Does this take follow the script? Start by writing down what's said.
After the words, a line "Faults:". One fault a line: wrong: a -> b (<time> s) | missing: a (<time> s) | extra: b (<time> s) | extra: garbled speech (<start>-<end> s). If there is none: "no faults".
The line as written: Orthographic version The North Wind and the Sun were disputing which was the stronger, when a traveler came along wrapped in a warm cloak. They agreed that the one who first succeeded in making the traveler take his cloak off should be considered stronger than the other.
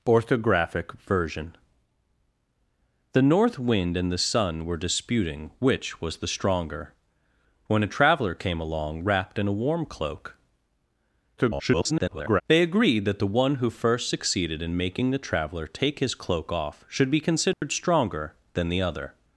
Orthographic version The North Wind and the Sun were disputing which was the stronger, when a traveler came along wrapped in a warm cloak. [garbled] They agreed that the one who first succeeded in making the traveler take his cloak off should be considered stronger than the other.
Faults:
extra: garbled speech (11.4-12.4 s)